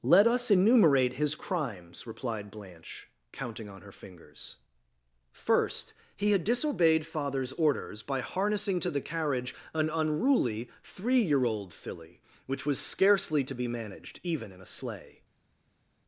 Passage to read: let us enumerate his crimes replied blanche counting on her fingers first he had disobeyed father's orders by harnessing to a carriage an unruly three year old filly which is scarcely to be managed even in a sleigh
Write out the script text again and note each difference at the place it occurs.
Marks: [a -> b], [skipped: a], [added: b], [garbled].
let us enumerate his crimes replied blanche counting on her fingers first he had disobeyed father's orders by harnessing to [a -> the] carriage an unruly three year old filly which [is -> was] scarcely to be managed even in a sleigh